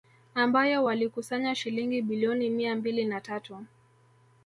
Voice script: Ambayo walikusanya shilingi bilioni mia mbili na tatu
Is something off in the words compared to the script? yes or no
no